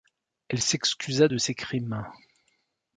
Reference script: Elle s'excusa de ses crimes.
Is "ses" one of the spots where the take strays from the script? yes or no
no